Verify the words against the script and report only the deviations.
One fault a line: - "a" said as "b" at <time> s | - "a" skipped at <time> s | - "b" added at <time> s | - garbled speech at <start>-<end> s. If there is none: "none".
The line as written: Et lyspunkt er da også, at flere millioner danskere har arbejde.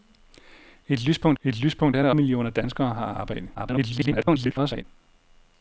- "et lyspunkt" added at 1.4 s
- "også at flere" skipped at 2.1 s
- garbled speech at 3.5-4.8 s